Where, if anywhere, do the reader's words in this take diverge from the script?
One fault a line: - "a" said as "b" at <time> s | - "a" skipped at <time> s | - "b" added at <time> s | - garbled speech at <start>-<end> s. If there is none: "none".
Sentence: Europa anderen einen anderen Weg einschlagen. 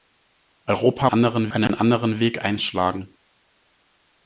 none